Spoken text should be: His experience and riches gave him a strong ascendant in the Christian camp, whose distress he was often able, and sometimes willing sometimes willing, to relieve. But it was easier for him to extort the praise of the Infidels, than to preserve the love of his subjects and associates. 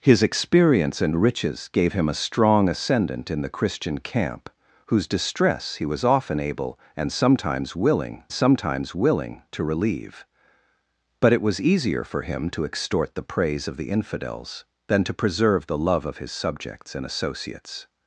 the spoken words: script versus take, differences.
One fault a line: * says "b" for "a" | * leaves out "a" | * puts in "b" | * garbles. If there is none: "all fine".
all fine